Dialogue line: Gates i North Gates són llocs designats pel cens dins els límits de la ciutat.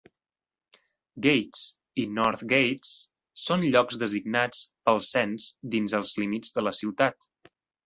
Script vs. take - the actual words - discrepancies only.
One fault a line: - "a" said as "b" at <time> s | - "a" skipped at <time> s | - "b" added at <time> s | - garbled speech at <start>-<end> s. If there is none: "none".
none